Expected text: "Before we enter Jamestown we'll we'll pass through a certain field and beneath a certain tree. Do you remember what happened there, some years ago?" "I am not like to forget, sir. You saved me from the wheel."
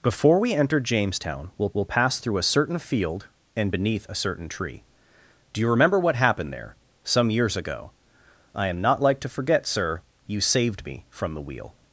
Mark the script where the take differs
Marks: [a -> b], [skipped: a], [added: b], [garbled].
"Before we enter Jamestown we'll we'll pass through a certain field and beneath a certain tree. Do you remember what happened there, some years ago?" "I am not like to forget, sir. You saved me from the wheel."